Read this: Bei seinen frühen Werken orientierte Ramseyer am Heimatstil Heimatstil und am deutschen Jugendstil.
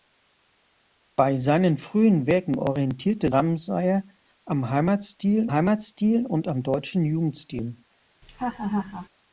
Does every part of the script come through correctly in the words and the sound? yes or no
no